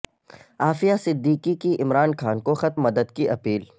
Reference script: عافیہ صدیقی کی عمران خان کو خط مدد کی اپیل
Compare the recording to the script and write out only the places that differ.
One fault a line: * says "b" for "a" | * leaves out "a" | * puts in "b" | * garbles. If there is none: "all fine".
all fine